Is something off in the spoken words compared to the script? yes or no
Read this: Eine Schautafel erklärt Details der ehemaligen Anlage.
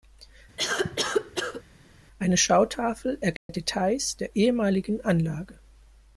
no